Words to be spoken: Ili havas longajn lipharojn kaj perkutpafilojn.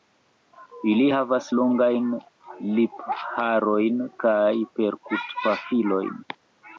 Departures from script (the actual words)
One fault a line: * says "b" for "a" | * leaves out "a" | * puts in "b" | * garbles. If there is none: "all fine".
all fine